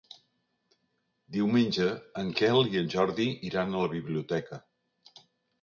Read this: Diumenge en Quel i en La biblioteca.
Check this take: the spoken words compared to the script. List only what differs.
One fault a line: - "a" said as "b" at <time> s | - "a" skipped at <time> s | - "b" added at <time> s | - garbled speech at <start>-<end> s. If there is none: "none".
- "Jordi iran a" added at 3.0 s